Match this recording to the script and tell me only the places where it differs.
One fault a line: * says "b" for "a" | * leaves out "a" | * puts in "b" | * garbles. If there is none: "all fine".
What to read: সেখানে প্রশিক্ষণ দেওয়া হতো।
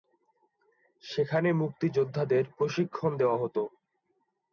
* puts in "মুক্তিযোদ্ধাদের"